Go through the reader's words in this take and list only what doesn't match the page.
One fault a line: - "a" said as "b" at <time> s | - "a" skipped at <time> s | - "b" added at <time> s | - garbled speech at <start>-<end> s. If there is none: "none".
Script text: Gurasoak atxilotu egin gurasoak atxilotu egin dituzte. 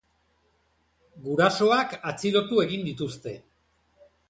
- "gurasoak atxilotu egin" skipped at 2.9 s